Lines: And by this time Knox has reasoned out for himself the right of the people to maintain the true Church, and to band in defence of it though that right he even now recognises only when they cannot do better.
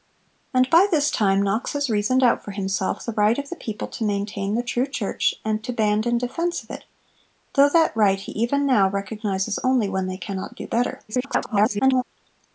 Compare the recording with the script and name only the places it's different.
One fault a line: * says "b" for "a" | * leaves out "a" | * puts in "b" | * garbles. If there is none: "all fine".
* garbles